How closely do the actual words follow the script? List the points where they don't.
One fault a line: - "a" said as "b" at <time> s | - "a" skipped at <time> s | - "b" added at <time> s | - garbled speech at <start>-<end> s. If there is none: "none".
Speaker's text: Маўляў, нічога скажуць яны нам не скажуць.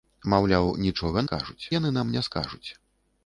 none